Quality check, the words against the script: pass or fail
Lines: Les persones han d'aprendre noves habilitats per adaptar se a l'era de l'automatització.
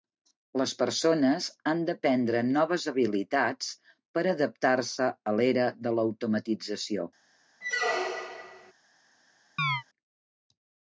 pass